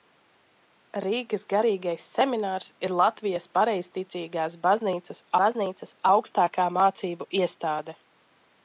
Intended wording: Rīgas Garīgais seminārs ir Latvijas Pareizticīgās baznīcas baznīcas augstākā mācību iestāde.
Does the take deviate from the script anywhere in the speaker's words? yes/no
no